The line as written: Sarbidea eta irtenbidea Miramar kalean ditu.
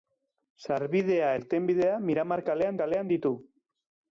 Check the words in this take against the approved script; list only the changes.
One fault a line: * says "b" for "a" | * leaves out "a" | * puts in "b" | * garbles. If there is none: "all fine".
* leaves out "eta"
* puts in "kalean"